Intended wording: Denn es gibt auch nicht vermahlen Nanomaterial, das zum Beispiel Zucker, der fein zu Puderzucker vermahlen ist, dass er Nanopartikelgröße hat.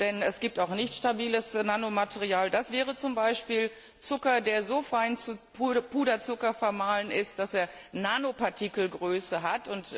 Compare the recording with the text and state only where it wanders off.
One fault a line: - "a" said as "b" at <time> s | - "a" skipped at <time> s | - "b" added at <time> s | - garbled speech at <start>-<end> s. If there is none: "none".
- "vermahlen" said as "stabiles" at 0.9 s
- "wäre" added at 2.7 s
- "so" added at 4.6 s